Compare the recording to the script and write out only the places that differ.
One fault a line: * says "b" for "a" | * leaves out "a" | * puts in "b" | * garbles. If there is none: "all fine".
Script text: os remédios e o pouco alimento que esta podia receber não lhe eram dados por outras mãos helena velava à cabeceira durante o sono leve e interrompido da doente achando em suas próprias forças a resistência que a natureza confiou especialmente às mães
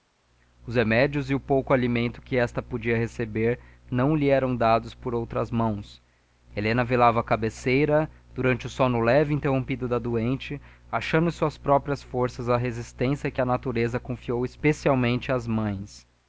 all fine